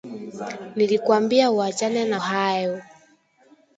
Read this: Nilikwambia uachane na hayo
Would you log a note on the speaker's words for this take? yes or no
no